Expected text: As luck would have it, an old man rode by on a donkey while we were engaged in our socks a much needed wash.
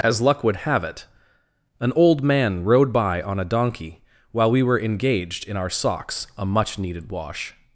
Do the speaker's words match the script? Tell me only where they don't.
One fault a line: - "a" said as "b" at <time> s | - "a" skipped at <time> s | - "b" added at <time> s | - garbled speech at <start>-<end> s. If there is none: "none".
none